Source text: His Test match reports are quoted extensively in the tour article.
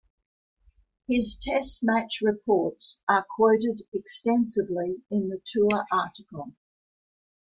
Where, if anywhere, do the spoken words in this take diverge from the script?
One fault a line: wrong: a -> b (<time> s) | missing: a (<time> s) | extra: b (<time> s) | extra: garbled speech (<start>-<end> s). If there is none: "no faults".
no faults